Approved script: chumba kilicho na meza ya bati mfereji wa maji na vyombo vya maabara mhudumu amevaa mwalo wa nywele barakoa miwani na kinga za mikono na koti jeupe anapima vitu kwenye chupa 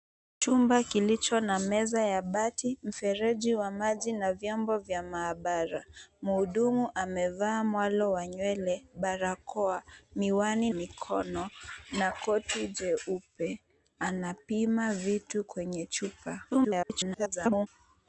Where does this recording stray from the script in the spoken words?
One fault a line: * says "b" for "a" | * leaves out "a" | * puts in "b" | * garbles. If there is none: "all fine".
* leaves out "na kinga za"
* garbles